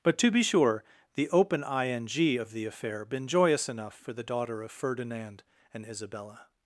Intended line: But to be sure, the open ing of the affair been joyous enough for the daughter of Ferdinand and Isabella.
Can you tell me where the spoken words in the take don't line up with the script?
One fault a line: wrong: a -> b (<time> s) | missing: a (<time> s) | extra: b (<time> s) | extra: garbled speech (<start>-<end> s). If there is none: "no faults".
no faults